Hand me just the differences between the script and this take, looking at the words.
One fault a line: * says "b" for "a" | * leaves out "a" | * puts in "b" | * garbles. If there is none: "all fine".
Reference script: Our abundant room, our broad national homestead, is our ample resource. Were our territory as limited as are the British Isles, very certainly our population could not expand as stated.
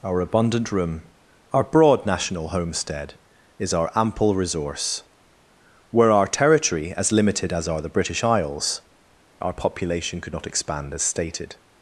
* leaves out "very certainly"